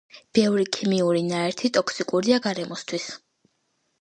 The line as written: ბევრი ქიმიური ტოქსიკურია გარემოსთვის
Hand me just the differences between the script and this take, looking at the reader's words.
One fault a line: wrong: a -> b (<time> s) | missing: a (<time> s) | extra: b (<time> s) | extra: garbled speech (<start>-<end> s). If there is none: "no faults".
extra: ნაერთი (1.3 s)